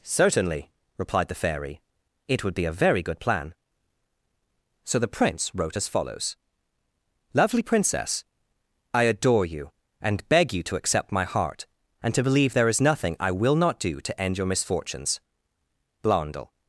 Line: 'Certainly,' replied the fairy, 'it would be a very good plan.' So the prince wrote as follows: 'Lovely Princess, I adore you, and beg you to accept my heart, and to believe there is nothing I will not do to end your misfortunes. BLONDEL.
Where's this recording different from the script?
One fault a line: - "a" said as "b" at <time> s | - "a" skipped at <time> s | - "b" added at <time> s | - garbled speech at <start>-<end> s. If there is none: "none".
none